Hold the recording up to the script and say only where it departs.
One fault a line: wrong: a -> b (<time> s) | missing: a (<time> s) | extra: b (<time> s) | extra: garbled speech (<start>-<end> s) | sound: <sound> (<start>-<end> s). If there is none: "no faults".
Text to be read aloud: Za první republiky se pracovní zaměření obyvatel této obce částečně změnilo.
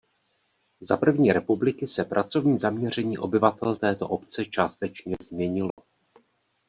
sound: dropout (5.7-5.8 s)